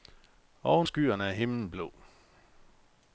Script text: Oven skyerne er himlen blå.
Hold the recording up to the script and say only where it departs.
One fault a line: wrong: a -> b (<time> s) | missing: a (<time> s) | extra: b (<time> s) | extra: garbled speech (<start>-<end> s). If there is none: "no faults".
no faults